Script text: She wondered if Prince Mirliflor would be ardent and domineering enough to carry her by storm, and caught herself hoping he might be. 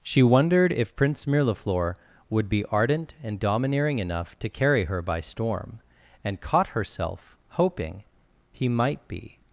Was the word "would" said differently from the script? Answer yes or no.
no